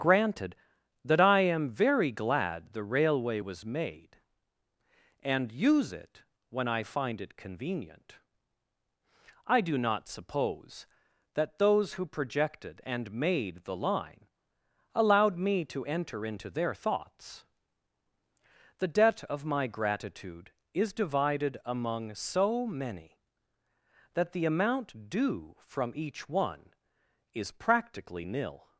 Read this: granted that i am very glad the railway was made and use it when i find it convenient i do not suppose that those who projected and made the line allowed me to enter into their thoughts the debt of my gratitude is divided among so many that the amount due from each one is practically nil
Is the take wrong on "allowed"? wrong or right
right